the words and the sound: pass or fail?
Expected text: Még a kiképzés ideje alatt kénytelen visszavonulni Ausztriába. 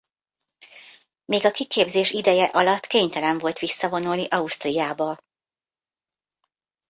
fail